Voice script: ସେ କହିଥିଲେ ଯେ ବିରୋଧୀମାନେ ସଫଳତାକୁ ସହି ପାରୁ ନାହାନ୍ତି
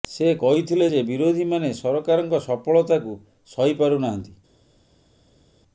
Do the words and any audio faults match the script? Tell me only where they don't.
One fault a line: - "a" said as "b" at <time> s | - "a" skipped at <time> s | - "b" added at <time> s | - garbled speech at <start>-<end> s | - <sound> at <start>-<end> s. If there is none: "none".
- "ସରକାରଙ୍କ" added at 1.8 s